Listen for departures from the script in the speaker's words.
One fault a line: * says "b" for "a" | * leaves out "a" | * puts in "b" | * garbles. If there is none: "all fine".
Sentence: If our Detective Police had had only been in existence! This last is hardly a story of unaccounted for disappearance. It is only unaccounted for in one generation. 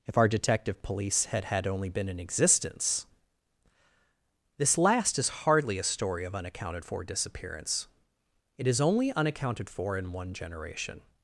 all fine